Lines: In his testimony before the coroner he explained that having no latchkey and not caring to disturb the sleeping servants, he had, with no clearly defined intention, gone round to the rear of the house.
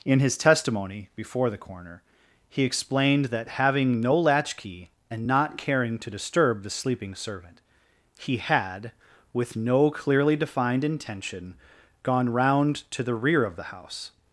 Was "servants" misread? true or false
true